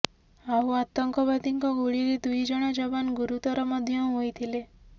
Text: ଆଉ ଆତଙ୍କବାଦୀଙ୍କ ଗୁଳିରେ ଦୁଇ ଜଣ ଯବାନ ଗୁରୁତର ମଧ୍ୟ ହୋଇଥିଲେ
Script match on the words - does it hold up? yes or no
yes